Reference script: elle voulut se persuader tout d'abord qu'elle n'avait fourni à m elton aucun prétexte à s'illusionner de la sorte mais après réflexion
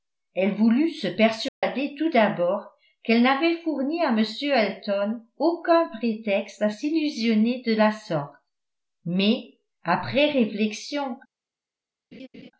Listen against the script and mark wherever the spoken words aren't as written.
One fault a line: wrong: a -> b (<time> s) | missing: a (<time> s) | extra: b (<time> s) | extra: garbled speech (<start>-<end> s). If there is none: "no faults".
no faults